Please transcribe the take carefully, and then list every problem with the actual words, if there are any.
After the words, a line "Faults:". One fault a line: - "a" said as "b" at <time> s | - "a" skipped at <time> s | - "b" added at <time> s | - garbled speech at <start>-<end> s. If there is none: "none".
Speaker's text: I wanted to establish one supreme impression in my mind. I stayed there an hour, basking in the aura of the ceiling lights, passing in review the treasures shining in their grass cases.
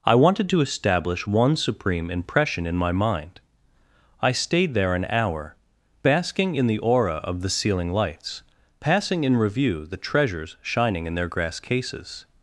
I wanted to establish one supreme impression in my mind. I stayed there an hour, basking in the aura of the ceiling lights, passing in review the treasures shining in their grass cases.
Faults:
none